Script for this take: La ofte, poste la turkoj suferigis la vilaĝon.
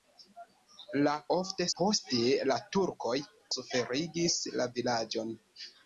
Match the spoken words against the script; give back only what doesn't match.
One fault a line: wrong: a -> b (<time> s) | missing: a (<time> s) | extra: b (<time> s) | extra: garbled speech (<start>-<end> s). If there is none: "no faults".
no faults